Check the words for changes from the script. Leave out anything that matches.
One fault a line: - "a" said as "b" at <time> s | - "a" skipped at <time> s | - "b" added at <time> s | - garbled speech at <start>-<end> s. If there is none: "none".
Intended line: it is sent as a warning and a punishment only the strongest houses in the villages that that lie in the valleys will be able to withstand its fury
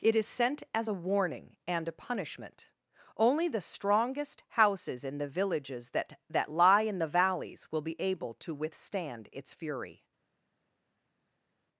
none